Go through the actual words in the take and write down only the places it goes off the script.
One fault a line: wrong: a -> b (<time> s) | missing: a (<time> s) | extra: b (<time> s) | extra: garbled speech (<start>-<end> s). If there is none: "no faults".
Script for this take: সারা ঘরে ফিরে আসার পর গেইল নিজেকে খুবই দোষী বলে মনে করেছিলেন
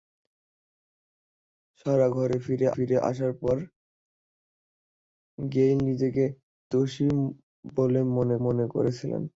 extra: ফিরে (2.7 s)
missing: খুবই (6.2 s)
extra: মনে (8.4 s)